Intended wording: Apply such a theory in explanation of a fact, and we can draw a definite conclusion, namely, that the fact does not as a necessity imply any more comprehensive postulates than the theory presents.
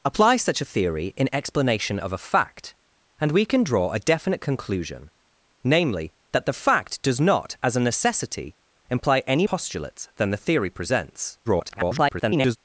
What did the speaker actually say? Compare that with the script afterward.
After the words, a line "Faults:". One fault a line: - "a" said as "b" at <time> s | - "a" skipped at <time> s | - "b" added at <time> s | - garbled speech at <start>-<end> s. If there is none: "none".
Apply such a theory in explanation of a fact, and we can draw a definite conclusion, namely, that the fact does not as a necessity imply any postulates than the theory presents. [garbled]
Faults:
- "more comprehensive" skipped at 9.4 s
- garbled speech at 11.4-12.6 s